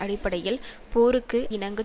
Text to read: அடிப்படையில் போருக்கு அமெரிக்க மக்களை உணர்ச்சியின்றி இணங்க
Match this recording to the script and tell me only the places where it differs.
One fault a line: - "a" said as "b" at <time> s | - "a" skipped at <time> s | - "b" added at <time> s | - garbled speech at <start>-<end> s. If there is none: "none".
- "அமெரிக்க மக்களை உணர்ச்சியின்றி" skipped at 1.4 s